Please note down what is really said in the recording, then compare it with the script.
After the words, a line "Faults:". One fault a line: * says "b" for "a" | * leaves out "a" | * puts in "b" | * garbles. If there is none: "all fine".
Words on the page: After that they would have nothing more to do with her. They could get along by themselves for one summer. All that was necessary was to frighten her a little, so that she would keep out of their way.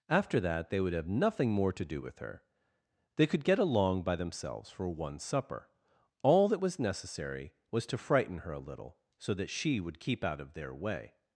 After that they would have nothing more to do with her. They could get along by themselves for one supper. All that was necessary was to frighten her a little, so that she would keep out of their way.
Faults:
* says "supper" for "summer"